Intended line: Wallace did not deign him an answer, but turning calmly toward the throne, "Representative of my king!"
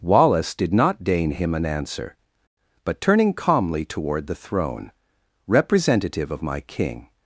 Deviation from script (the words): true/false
false